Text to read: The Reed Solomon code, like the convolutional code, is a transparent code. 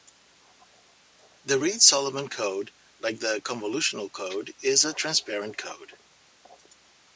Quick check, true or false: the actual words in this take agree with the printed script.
true